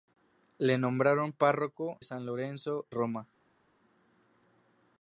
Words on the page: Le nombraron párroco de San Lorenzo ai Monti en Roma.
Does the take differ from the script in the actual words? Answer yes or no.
yes